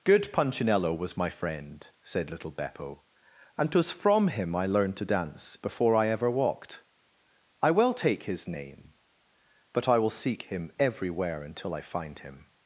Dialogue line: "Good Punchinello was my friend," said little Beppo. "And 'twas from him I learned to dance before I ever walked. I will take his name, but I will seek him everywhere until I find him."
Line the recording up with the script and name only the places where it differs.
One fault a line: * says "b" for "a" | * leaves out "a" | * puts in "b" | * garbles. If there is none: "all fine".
all fine